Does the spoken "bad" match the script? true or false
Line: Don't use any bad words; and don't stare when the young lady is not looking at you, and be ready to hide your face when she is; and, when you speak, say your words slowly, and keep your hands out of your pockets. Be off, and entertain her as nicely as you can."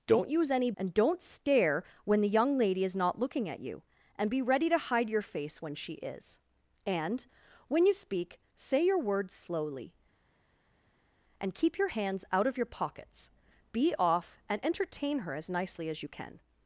false